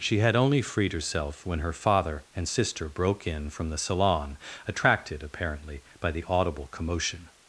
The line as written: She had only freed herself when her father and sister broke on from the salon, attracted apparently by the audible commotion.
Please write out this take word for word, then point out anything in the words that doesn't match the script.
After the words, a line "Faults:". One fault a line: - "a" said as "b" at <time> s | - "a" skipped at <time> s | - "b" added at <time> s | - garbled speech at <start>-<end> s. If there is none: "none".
She had only freed herself when her father and sister broke in from the salon, attracted apparently by the audible commotion.
Faults:
- "on" said as "in" at 3.3 s